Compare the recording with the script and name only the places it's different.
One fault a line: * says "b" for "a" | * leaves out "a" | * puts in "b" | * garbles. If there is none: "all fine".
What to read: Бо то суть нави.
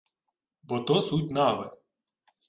all fine